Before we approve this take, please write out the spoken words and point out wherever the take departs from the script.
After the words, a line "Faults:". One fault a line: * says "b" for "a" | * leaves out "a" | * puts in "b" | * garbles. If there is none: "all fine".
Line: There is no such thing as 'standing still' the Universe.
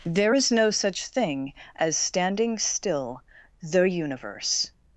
There is no such thing as 'standing still' the Universe.
Faults:
all fine